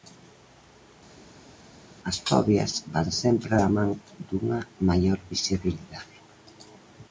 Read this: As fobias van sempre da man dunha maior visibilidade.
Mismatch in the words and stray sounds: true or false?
false